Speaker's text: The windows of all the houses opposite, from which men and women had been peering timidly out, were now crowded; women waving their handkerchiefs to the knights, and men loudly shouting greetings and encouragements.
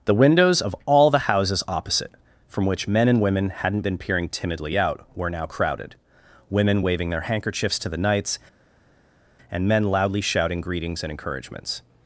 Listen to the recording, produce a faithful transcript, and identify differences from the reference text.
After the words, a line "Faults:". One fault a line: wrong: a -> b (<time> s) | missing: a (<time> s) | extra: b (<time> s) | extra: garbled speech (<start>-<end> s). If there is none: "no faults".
The windows of all the houses opposite, from which men and women hadn't been peering timidly out, were now crowded; women waving their handkerchiefs to the knights, and men loudly shouting greetings and encouragements.
Faults:
wrong: had -> hadn't (3.5 s)